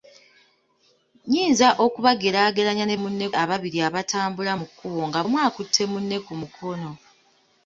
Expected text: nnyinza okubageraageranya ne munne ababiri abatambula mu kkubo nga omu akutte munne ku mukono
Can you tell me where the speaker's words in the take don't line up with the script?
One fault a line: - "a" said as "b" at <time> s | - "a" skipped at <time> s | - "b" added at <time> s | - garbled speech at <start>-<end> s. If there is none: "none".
none